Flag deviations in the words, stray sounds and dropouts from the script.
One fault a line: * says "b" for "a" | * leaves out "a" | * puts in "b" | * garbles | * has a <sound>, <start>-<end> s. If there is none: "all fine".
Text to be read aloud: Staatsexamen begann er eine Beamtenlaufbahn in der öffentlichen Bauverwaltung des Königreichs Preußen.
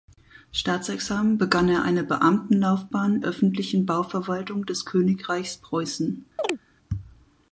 * leaves out "in der"
* has a chirp, 6.4-6.6 s